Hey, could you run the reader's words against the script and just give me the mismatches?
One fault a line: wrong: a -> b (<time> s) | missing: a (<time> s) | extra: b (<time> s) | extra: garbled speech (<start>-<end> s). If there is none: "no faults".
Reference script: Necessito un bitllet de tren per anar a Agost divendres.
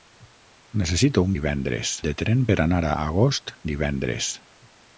wrong: bitllet -> divendres (1.4 s)